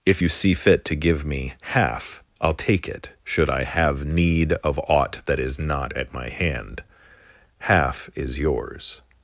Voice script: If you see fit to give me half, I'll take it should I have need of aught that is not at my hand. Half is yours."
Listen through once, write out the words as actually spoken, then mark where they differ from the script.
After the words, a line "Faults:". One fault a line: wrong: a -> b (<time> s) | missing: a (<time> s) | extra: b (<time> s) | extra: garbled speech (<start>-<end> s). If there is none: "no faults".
If you see fit to give me half, I'll take it should I have need of aught that is not at my hand. Half is yours."
Faults:
no faults